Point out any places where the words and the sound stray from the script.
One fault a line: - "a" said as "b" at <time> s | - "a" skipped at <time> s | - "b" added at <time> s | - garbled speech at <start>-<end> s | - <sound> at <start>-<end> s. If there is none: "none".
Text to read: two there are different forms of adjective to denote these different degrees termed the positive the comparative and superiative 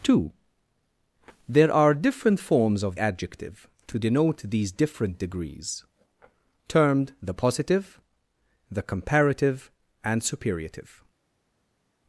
none